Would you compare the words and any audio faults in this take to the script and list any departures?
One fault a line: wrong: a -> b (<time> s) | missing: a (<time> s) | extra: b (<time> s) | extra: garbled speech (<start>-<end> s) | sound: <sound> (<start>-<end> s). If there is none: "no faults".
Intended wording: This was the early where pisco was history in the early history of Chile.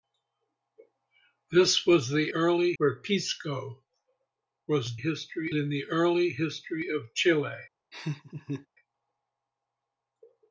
sound: laugh (7.9-8.7 s)